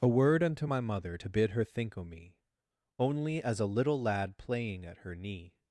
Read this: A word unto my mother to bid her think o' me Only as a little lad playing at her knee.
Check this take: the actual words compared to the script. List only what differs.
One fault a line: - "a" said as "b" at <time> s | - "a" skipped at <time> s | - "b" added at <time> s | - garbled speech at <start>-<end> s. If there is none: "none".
none